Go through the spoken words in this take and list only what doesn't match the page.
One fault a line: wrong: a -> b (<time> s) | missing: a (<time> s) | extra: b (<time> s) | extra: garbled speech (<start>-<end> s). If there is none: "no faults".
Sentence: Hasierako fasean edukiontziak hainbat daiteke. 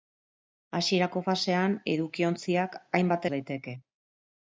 no faults